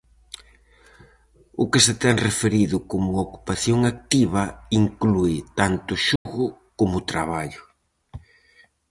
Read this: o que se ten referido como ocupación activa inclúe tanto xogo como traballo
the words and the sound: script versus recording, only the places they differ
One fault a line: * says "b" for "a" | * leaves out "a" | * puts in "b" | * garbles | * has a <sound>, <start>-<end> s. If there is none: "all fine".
* has a dropout, 6.2-6.3 s